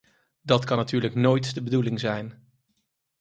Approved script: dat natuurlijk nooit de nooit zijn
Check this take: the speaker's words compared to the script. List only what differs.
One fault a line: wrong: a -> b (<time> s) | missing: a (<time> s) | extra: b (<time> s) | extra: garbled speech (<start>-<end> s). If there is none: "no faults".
extra: kan (0.7 s)
wrong: nooit -> bedoeling (1.6 s)